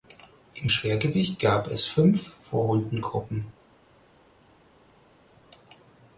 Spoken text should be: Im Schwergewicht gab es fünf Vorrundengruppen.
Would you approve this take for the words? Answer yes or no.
yes